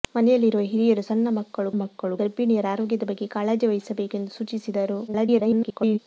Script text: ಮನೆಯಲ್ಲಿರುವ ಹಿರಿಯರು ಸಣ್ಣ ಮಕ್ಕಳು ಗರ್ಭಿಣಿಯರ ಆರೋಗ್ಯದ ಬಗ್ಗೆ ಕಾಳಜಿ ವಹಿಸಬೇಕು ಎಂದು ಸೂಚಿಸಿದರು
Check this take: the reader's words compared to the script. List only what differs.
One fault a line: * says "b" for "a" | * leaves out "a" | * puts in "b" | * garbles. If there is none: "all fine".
* puts in "ಮಕ್ಕಳು"
* garbles